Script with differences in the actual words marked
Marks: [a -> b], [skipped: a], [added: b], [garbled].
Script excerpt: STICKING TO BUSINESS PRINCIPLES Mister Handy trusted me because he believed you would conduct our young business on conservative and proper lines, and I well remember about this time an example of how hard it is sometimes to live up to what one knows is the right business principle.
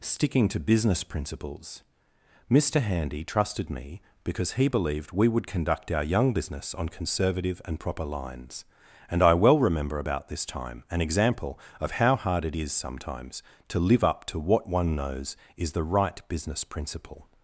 STICKING TO BUSINESS PRINCIPLES Mister Handy trusted me because he believed [you -> we] would conduct our young business on conservative and proper lines, and I well remember about this time an example of how hard it is sometimes to live up to what one knows is the right business principle.